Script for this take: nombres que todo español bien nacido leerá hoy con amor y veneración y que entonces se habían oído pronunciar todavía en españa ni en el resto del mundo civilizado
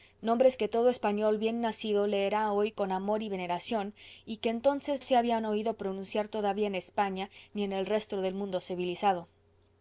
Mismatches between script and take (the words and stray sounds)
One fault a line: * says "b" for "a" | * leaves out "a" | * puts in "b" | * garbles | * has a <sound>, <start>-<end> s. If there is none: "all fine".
all fine